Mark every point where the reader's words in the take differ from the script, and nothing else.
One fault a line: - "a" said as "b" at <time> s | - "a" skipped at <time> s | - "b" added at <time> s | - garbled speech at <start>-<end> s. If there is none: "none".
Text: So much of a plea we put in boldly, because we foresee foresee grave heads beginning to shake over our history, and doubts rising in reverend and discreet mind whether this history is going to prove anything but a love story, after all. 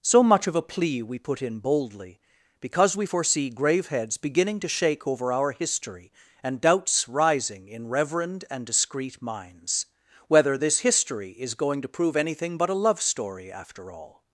- "foresee" skipped at 3.5 s
- "mind" said as "minds" at 9.2 s